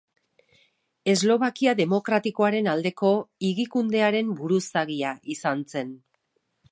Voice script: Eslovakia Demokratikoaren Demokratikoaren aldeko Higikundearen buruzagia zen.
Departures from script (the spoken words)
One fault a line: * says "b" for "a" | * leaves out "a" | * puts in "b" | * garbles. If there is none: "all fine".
* leaves out "Demokratikoaren"
* puts in "izan"